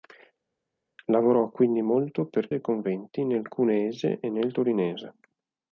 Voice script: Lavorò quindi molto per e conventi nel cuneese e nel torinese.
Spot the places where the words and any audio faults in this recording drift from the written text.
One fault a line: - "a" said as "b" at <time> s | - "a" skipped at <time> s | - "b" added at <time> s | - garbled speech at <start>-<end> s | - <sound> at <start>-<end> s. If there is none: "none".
none